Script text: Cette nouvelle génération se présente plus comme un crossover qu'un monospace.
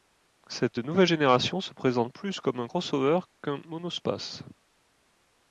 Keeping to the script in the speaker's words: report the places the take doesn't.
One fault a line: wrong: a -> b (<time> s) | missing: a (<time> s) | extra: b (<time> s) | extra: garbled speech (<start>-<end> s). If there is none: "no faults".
no faults